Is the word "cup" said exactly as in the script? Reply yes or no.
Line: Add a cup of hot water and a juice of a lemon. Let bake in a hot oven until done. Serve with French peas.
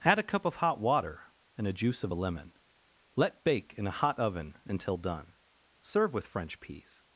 yes